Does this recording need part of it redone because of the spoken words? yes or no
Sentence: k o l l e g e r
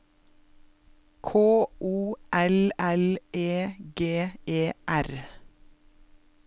no